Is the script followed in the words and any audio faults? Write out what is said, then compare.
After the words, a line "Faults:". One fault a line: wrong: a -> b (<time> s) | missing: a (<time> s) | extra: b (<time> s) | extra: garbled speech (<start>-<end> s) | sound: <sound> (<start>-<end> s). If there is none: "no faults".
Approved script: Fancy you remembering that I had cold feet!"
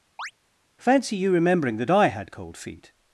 Fancy you remembering that I had cold feet!"
Faults:
sound: chirp (0.2-0.3 s)